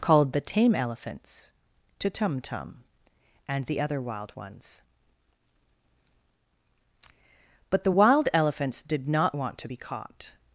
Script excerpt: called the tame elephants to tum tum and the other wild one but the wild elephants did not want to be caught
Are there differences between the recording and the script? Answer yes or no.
yes